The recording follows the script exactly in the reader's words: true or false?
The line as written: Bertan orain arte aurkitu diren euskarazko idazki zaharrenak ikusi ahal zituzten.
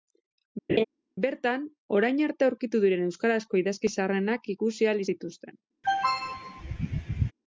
true